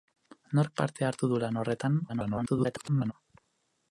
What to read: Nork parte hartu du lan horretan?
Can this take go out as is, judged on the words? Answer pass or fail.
fail